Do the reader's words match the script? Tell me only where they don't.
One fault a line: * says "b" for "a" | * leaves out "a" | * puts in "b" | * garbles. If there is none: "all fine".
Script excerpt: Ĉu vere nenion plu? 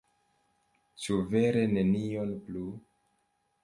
all fine